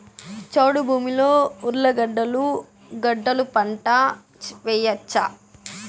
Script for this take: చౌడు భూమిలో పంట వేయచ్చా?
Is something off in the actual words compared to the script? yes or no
yes